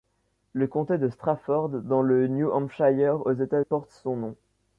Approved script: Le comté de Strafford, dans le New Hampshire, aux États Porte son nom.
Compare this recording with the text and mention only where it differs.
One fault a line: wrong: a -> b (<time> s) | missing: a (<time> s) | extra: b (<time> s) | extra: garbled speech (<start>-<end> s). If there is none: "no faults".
no faults